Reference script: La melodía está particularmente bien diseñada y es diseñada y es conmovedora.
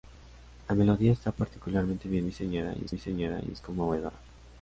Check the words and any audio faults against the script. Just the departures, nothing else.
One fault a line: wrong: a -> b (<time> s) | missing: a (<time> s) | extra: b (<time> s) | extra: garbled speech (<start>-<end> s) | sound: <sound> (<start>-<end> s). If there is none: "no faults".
no faults